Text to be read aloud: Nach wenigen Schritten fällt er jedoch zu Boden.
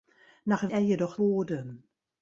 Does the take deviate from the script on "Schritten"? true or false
true